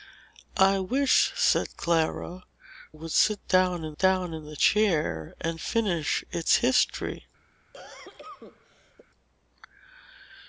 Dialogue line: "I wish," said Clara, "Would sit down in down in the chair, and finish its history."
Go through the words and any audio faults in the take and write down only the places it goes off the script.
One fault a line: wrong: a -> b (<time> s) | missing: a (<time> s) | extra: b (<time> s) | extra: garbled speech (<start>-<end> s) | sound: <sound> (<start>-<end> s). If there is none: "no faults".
sound: cough (7.7-9.1 s)